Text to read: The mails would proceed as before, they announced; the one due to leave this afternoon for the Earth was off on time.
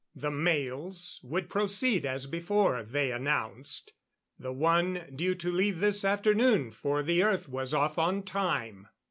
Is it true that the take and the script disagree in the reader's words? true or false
false